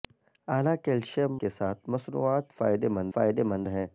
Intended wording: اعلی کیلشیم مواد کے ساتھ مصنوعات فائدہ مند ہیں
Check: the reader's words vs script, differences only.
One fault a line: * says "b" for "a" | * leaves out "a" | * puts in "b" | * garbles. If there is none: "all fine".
* leaves out "مواد"
* puts in "فائدہ مند"